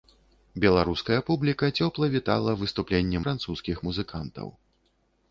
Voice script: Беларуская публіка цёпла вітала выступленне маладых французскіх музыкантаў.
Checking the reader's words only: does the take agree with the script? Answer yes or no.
no